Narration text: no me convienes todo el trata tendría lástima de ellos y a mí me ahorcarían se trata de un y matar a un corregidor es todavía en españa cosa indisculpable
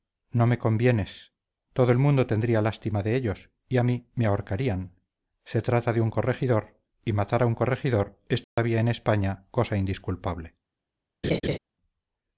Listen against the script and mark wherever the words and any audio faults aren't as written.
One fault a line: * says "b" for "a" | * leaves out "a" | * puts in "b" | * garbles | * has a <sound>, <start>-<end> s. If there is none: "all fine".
* says "mundo" for "trata"
* puts in "corregidor"
* has a dropout, 8.4-8.6 s
* has a laugh, 11.2-11.6 s